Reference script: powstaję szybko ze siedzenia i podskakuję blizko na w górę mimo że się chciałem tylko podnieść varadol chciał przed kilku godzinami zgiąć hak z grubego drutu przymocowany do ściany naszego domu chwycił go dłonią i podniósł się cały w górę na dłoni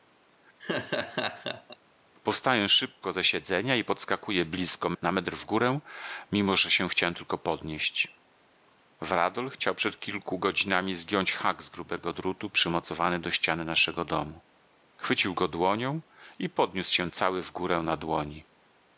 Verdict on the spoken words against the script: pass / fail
fail